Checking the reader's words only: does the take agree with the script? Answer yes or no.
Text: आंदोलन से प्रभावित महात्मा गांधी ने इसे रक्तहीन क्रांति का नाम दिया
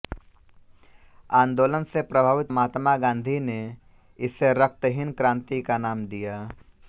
yes